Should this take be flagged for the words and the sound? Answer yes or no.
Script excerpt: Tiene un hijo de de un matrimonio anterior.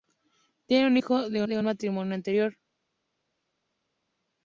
no